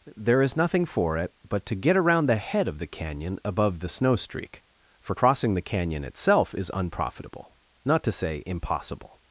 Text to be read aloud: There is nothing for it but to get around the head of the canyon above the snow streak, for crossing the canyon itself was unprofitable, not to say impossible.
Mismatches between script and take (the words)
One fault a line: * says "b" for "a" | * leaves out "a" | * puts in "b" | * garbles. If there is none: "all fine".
* says "is" for "was"